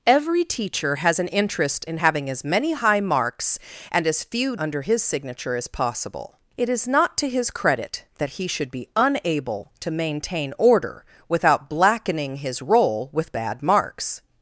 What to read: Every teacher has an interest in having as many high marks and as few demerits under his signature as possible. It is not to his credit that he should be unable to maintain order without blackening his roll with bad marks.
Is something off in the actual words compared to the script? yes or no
yes